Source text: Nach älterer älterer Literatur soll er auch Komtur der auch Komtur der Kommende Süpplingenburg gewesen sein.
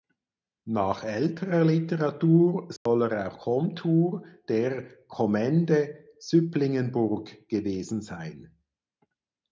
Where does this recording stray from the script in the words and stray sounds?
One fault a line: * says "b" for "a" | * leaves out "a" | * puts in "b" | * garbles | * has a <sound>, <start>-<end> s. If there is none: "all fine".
* leaves out "älterer"
* has a dropout, 2.8-2.9 s
* leaves out "auch Komtur der"